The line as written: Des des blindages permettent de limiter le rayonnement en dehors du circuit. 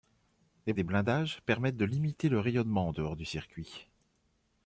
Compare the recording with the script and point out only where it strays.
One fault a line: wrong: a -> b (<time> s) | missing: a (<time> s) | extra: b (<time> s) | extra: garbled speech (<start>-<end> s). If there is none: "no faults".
no faults